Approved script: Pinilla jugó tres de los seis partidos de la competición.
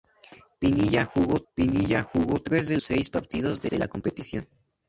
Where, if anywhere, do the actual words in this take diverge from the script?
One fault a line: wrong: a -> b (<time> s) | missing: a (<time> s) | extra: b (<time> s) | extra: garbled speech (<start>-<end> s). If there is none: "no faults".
extra: pinilla jugó (1.5 s)
missing: los (2.8 s)
extra: de (3.7 s)